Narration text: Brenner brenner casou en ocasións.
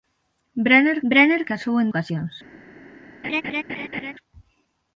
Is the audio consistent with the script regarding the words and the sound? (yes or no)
no